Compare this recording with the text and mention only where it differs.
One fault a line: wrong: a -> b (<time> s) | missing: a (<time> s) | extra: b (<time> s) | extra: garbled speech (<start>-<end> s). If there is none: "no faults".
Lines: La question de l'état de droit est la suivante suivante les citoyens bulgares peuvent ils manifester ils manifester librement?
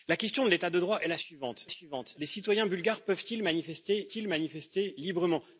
no faults